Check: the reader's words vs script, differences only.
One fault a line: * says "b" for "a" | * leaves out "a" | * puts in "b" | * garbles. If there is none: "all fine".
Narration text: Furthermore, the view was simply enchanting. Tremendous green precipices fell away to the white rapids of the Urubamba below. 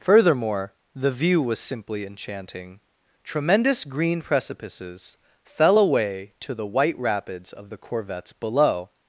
* says "Corvettes" for "Urubamba"